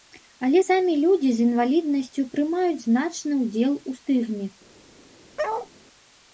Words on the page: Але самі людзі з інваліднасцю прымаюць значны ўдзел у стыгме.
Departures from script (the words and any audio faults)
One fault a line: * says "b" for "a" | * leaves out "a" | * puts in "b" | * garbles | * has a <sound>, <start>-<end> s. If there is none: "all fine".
* has a bark, 5.4-5.7 s